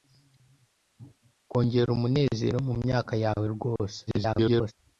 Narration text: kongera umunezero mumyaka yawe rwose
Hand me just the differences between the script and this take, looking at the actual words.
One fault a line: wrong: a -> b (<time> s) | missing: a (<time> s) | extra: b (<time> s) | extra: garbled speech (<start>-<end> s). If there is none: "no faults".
extra: garbled speech (4.1-4.7 s)